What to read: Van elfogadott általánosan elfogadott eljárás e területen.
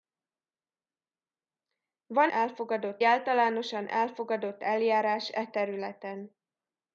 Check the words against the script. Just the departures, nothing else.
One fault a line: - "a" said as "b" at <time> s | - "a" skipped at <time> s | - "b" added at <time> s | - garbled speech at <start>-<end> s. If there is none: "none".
none